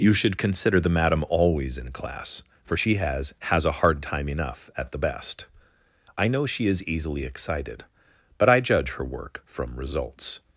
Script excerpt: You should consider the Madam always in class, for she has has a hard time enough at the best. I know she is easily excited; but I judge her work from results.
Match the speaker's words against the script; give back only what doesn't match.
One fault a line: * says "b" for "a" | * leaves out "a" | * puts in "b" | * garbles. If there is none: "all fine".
all fine